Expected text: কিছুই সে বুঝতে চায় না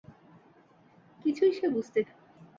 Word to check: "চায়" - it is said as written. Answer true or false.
false